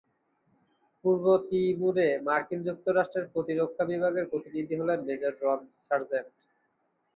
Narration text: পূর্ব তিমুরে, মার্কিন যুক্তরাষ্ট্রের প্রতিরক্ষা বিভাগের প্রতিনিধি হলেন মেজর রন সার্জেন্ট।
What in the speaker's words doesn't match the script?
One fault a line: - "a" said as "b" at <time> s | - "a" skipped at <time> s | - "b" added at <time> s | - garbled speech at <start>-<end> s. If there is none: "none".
none